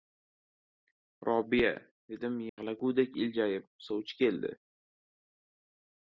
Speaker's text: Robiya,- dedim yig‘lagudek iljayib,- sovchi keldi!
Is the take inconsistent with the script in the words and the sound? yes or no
yes